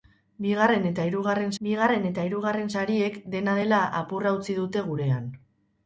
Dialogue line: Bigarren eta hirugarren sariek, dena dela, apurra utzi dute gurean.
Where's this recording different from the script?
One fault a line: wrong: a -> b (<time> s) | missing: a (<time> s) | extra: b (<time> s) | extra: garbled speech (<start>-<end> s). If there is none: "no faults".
extra: bigarren eta hirugarren (1.6 s)